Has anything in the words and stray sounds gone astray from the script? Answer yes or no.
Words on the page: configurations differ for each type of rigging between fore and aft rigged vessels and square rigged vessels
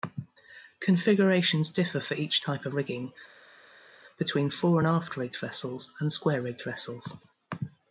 no